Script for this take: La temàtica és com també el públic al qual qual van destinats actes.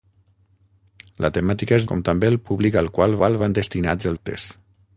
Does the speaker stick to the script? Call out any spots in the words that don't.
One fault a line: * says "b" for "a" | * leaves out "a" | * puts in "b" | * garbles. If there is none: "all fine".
all fine